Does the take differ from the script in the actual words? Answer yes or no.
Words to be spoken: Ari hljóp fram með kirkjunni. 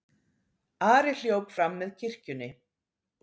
no